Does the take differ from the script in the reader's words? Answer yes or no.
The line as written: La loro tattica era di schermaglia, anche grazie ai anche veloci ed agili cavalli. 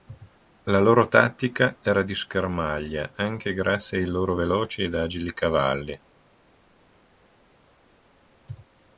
yes